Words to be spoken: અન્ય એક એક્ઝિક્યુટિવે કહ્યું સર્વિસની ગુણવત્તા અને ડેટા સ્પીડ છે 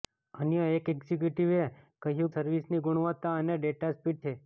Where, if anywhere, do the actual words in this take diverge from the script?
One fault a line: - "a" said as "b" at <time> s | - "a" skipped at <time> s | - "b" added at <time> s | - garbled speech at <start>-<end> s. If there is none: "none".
none